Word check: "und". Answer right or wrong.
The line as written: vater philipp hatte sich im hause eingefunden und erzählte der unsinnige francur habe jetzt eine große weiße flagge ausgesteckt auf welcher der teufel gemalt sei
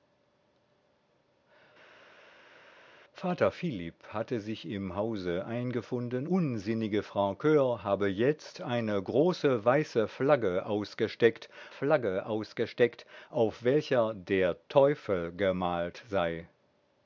wrong